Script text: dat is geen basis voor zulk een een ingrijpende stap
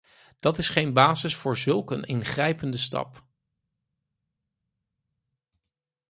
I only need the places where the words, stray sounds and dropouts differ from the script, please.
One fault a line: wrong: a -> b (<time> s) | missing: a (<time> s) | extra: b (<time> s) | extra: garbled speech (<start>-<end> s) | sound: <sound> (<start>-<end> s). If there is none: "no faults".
missing: een (2.0 s)